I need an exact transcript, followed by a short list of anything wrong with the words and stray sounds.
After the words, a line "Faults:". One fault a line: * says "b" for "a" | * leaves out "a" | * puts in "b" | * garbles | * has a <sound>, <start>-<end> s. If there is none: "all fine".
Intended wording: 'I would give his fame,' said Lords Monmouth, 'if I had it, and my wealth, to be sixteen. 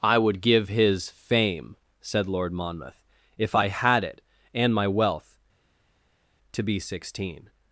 'I would give his fame,' said Lord Monmouth, 'if I had it, and my wealth, to be sixteen.
Faults:
* says "Lord" for "Lords"